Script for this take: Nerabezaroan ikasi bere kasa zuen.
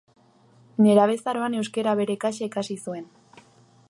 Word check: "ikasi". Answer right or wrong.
wrong